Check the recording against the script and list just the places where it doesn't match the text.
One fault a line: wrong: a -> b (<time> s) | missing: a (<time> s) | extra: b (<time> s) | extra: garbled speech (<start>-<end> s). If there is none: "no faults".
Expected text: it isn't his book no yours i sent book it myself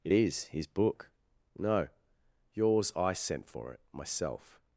wrong: isn't -> is (0.1 s)
wrong: book -> for (3.5 s)